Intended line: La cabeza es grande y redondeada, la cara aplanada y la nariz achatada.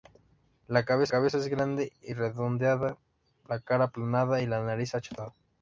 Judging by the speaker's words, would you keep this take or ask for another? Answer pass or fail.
fail